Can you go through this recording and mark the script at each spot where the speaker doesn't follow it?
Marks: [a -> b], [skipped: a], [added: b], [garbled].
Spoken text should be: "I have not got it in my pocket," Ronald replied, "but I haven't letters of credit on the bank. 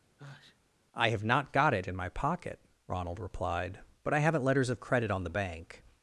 "I have not got it in my pocket," Ronald replied, "but I haven't letters of credit on the bank.